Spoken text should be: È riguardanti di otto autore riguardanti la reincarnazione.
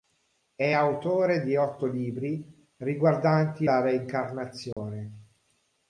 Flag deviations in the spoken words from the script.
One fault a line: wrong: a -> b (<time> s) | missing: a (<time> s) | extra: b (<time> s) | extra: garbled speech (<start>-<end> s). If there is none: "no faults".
wrong: riguardanti -> autore (0.7 s)
wrong: autore -> libri (1.8 s)